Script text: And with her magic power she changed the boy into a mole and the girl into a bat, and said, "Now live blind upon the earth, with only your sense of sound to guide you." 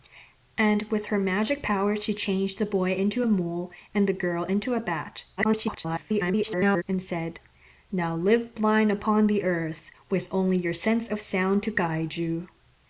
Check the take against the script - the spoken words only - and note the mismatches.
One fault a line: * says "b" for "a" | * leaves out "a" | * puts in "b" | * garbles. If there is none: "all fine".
* garbles